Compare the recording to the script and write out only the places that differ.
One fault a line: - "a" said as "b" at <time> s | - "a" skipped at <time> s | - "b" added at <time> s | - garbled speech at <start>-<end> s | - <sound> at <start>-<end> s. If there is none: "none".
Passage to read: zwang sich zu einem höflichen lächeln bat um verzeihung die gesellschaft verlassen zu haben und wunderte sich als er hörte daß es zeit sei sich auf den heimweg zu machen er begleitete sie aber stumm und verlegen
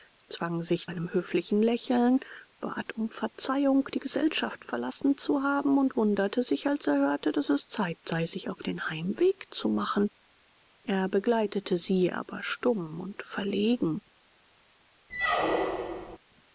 - "zu" skipped at 0.9 s
- squeak at 15.1-16.2 s